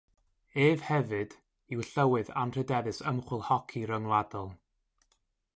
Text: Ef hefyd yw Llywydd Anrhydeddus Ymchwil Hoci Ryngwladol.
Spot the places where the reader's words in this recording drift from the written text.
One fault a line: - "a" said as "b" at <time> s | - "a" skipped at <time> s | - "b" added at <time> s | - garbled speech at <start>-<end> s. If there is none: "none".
none